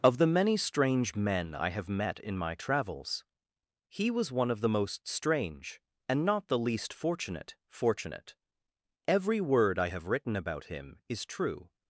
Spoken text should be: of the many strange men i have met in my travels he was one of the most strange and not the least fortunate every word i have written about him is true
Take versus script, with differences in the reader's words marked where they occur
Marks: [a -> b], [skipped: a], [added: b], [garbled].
of the many strange men i have met in my travels he was one of the most strange and not the least fortunate [added: fortunate] every word i have written about him is true